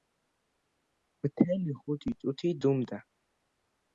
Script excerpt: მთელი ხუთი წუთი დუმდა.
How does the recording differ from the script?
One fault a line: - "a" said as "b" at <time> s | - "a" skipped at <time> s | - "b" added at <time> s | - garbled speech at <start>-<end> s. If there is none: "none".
none